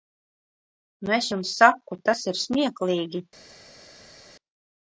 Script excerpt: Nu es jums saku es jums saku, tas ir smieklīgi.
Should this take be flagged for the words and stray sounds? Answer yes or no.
yes